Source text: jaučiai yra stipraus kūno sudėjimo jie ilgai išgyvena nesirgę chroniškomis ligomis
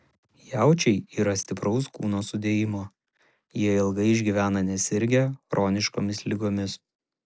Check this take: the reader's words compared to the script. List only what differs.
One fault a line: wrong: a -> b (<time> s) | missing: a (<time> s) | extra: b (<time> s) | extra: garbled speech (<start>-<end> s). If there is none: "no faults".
no faults